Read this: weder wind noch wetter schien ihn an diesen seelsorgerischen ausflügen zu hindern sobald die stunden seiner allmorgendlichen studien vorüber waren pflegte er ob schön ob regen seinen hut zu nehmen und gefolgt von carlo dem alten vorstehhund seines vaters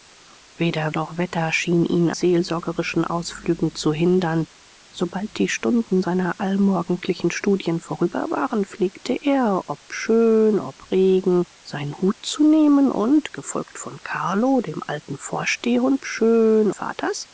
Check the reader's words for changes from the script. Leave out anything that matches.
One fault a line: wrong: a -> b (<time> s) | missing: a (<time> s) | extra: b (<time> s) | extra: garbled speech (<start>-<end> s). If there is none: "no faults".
missing: wind (0.9 s)
missing: an diesen (2.1 s)
wrong: seines -> schön (16.0 s)